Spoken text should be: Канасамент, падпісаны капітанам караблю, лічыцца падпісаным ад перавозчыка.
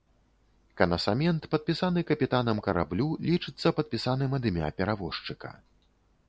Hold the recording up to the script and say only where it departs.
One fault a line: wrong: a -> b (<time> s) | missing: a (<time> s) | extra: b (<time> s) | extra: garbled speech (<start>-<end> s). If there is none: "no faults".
extra: імя (4.5 s)